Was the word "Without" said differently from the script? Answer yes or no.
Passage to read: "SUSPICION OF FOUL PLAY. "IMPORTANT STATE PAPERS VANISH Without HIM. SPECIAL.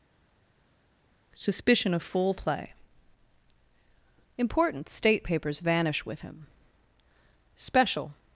yes